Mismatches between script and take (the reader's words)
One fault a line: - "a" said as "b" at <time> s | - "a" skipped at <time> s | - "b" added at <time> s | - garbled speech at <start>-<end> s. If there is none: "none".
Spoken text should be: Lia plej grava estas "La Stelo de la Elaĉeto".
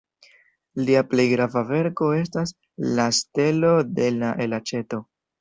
- "verko" added at 1.7 s